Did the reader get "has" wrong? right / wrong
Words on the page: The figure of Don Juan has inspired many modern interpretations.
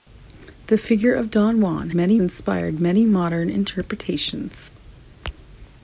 wrong